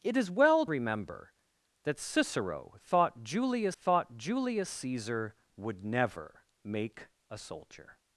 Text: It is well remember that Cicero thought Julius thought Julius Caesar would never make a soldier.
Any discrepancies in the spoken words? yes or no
no